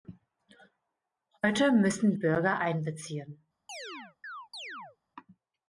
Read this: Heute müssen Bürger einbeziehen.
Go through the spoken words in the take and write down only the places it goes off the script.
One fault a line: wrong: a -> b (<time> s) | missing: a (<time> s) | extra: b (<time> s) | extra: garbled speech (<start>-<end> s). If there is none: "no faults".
no faults